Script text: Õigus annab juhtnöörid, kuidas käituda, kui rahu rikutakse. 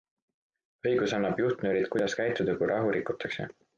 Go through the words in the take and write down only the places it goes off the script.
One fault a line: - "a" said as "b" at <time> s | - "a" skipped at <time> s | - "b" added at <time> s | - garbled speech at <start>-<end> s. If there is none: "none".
none